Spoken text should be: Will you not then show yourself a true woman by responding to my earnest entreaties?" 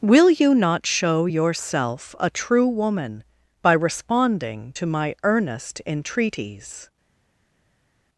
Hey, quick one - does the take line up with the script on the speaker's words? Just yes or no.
no